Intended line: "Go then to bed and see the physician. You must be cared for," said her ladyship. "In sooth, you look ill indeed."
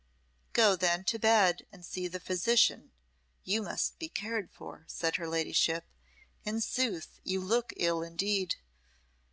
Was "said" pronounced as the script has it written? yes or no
yes